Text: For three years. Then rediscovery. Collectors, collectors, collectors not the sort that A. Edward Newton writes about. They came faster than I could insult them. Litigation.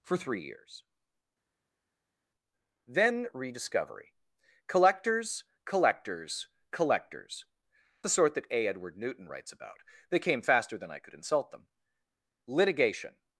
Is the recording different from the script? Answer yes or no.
yes